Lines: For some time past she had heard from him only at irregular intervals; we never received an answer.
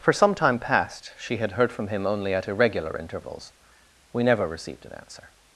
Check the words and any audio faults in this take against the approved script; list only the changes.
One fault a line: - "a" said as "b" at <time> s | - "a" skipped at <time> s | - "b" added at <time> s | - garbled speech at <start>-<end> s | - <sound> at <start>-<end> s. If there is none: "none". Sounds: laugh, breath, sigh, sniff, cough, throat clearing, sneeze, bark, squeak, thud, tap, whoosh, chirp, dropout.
none